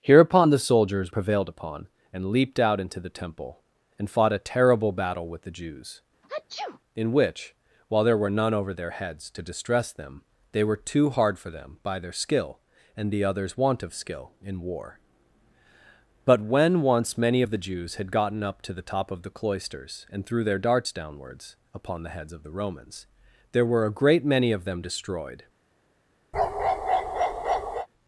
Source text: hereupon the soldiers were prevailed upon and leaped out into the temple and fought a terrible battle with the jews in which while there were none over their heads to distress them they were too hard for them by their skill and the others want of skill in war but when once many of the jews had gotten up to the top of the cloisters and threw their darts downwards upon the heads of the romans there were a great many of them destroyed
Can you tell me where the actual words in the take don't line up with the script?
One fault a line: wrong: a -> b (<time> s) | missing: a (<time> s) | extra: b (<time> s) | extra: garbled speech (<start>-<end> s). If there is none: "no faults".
missing: were (1.1 s)